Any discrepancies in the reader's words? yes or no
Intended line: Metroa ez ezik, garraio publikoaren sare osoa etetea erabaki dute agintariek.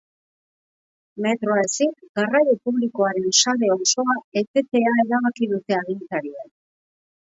yes